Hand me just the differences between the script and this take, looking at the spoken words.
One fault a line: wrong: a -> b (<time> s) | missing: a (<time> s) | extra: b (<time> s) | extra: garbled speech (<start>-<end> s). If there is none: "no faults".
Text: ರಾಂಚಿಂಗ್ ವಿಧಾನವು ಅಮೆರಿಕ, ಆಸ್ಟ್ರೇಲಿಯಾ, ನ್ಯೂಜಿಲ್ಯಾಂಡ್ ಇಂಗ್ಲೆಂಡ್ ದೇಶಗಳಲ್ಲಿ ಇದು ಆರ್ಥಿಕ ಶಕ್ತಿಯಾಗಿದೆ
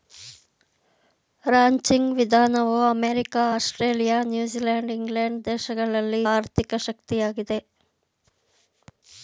missing: ಇದು (6.2 s)